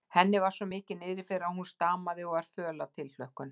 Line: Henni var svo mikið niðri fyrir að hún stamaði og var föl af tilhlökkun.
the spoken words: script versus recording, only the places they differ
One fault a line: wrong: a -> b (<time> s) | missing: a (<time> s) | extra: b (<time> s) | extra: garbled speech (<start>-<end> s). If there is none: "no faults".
no faults